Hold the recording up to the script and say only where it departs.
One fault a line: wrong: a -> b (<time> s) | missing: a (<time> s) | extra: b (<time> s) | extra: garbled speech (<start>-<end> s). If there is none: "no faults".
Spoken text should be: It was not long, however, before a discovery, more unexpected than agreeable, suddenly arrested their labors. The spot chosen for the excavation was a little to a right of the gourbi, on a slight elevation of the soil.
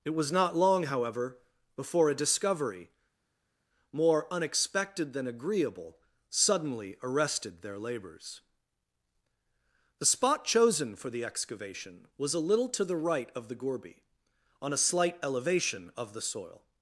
wrong: a -> the (12.8 s)